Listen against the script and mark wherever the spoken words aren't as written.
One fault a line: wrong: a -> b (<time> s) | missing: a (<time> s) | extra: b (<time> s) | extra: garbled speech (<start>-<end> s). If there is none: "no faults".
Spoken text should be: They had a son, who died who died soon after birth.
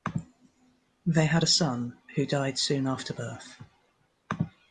missing: who died (2.6 s)